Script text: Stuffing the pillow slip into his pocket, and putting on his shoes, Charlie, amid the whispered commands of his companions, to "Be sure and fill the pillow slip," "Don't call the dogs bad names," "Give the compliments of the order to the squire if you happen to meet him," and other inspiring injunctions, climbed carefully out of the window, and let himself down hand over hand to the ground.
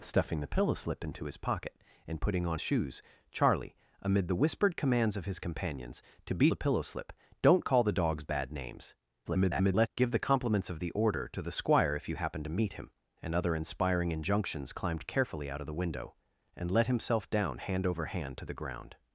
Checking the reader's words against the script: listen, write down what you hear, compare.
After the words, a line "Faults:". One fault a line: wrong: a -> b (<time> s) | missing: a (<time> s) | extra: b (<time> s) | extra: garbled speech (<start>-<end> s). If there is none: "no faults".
Stuffing the pillow slip into his pocket, and putting on shoes, Charlie, amid the whispered commands of his companions, to "Be the pillow slip," "Don't call the dogs bad names," [garbled] "Give the compliments of the order to the squire if you happen to meet him," and other inspiring injunctions, climbed carefully out of the window, and let himself down hand over hand to the ground.
Faults:
missing: his (2.6 s)
missing: sure and fill (6.5 s)
extra: garbled speech (9.2-9.9 s)